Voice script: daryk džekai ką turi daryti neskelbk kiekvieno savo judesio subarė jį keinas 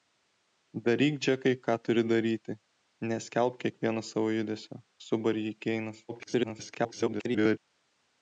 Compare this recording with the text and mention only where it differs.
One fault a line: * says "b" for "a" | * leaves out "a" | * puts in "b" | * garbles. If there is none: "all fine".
* garbles